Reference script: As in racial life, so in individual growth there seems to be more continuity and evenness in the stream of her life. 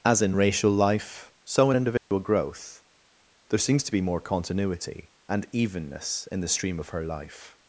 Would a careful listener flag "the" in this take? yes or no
no